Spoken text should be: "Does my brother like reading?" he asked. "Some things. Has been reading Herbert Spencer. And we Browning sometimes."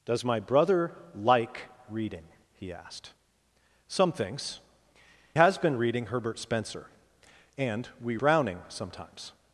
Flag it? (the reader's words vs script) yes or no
no